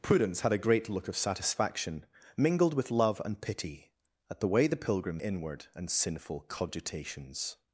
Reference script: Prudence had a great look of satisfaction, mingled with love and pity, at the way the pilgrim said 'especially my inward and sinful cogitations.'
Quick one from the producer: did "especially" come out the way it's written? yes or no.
no